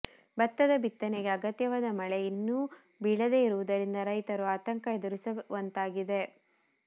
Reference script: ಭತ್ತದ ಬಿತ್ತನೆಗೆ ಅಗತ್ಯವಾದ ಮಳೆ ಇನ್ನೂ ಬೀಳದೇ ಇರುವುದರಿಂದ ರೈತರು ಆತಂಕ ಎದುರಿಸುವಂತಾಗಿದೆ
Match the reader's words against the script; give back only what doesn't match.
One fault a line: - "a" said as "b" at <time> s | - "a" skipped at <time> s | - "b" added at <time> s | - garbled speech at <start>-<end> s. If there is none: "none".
none